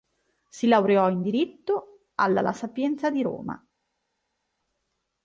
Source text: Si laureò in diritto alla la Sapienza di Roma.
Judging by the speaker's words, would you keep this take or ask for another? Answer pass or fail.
pass